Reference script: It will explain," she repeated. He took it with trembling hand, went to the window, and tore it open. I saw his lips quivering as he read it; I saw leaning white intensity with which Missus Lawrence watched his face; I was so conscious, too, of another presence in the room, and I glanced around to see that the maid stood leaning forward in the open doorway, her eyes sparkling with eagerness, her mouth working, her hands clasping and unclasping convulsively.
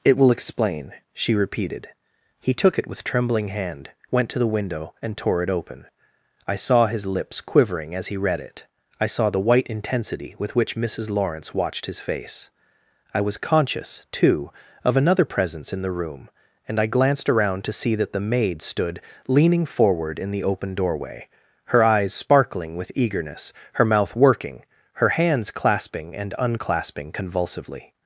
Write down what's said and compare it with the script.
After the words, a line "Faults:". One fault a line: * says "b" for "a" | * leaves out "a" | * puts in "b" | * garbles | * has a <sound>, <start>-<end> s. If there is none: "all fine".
It will explain," she repeated. He took it with trembling hand, went to the window, and tore it open. I saw his lips quivering as he read it; I saw the white intensity with which Missus Lawrence watched his face; I was conscious, too, of another presence in the room, and I glanced around to see that the maid stood leaning forward in the open doorway, her eyes sparkling with eagerness, her mouth working, her hands clasping and unclasping convulsively.
Faults:
* says "the" for "leaning"
* leaves out "so"